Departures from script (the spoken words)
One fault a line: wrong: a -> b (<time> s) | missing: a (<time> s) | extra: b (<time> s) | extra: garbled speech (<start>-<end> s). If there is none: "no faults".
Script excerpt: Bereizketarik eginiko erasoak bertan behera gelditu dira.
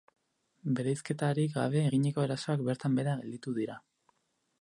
extra: gabe (1.6 s)